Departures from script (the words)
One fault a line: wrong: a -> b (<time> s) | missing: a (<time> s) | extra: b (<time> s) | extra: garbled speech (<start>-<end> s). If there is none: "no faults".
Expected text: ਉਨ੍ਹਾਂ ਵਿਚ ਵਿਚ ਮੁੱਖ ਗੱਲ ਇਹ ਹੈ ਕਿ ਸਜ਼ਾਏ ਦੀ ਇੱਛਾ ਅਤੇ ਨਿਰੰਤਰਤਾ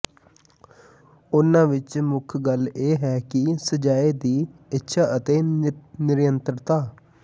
missing: ਵਿਚ (2.0 s)